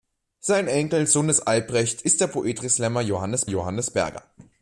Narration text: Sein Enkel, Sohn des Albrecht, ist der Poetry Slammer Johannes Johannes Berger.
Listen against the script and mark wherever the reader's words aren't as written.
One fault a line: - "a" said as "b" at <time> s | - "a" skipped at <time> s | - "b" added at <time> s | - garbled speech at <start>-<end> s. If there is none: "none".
none